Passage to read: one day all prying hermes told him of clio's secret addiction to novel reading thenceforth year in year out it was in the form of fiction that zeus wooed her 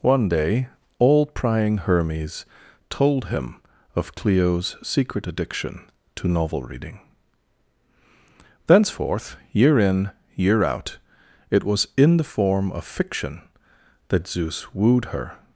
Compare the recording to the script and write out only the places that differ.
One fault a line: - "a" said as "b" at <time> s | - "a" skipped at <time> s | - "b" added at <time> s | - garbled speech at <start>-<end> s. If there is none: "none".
none